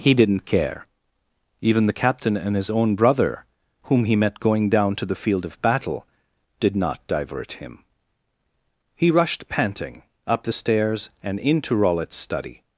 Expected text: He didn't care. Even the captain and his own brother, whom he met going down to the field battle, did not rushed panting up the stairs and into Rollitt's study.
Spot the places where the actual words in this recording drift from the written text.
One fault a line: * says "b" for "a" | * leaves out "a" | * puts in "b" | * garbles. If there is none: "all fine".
* puts in "of"
* puts in "divert him He"